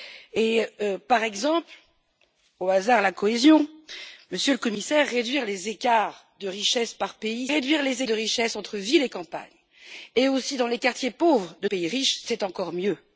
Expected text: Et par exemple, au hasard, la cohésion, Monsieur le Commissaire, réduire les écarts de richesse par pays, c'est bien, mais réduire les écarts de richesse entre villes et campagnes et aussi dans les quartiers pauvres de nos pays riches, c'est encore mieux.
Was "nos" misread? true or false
true